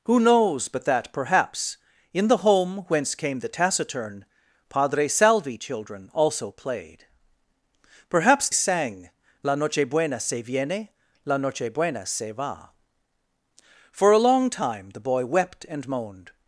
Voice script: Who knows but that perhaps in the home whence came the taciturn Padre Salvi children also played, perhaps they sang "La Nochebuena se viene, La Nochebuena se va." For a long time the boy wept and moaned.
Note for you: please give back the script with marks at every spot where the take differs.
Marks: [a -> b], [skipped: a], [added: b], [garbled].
Who knows but that perhaps in the home whence came the taciturn Padre Salvi children also played, perhaps [skipped: they] sang "La Nochebuena se viene, La Nochebuena se va." For a long time the boy wept and moaned.